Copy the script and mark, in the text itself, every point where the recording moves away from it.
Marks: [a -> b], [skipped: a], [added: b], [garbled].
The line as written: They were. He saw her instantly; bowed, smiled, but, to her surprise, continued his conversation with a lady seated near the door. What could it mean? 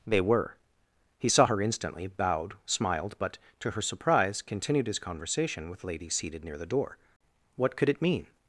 They were. He saw her instantly; bowed, smiled, but, to her surprise, continued his conversation with [skipped: a] lady seated near the door. What could it mean?